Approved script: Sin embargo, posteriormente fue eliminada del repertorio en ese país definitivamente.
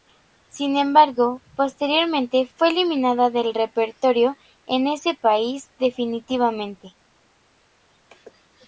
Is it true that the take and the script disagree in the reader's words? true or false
false